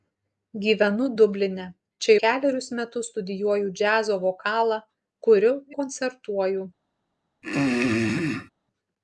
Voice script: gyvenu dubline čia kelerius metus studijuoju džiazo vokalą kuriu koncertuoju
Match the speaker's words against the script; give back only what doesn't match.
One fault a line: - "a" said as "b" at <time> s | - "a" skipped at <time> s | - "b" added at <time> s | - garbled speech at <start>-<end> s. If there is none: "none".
none